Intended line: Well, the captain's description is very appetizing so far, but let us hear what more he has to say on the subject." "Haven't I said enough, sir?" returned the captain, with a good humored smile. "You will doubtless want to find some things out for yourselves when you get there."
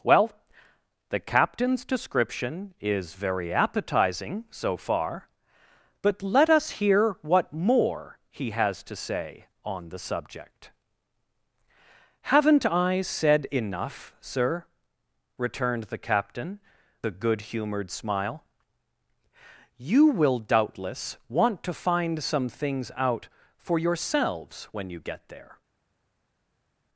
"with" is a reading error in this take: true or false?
true